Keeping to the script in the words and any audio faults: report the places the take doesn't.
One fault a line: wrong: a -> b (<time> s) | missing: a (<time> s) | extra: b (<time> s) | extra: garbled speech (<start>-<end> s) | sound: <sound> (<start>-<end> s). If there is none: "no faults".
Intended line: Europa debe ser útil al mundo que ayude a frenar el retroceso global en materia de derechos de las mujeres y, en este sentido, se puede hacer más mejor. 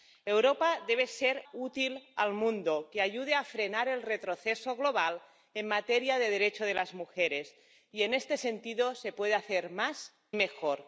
no faults